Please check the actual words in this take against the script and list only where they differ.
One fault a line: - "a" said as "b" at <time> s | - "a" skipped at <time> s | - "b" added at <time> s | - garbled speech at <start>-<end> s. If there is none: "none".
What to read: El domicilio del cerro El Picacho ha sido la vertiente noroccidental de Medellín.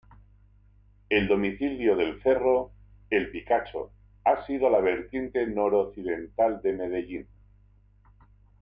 none